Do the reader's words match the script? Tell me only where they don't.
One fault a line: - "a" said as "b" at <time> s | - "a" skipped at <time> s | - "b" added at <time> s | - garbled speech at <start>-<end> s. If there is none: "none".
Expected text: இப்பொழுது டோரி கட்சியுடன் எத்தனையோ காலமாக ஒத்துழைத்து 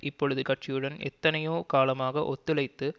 - "டோரி" skipped at 0.4 s